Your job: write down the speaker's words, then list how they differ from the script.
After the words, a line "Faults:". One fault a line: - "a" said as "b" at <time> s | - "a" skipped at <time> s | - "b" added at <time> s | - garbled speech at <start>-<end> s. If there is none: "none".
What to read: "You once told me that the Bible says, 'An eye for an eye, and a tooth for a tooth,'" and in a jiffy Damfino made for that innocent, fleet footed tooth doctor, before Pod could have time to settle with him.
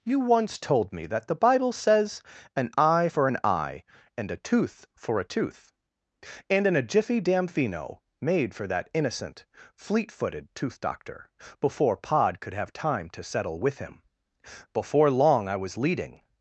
"You once told me that the Bible says, 'An eye for an eye, and a tooth for a tooth,'" and in a jiffy Damfino made for that innocent, fleet footed tooth doctor, before Pod could have time to settle with him. Before long, I was leading
Faults:
- "Before long I was leading" added at 14.7 s